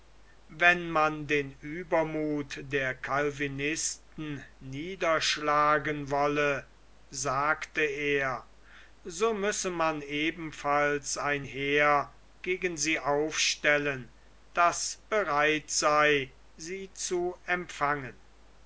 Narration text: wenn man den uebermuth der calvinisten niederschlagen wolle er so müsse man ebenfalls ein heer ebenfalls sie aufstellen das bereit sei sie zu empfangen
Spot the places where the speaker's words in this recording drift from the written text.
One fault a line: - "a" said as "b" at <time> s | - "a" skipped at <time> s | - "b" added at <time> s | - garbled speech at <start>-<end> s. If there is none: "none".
- "sagte" added at 7.1 s
- "ebenfalls" said as "gegen" at 12.4 s